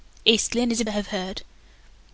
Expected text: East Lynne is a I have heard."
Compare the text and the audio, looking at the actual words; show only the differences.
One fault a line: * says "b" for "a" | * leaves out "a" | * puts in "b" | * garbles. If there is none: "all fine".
all fine